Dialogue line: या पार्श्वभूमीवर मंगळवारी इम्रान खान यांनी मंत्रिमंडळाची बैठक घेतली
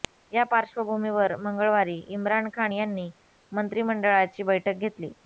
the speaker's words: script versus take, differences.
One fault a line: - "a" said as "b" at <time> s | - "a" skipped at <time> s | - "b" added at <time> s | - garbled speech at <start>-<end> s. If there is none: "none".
none